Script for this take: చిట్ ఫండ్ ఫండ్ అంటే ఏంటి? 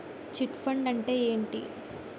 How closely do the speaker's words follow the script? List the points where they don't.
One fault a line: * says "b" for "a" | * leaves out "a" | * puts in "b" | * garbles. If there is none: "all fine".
* leaves out "ఫండ్"